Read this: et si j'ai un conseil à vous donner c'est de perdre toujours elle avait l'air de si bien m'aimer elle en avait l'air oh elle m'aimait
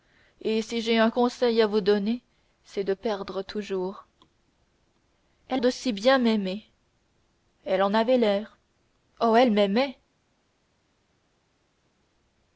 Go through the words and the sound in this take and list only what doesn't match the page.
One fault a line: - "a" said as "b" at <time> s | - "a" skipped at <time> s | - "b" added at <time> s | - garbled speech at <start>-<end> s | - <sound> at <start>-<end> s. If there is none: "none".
- "avait l'air" skipped at 5.6 s